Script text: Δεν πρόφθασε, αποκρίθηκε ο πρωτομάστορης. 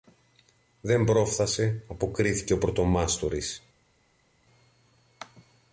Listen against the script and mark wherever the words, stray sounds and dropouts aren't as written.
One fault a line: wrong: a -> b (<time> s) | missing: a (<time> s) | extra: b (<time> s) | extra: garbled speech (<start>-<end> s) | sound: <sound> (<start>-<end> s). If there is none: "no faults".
no faults